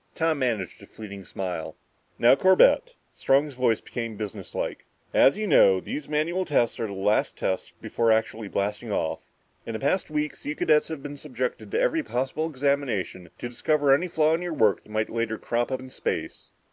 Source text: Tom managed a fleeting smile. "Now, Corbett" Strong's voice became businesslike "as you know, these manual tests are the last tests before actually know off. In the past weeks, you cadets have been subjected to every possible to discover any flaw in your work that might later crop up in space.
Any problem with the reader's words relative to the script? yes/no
yes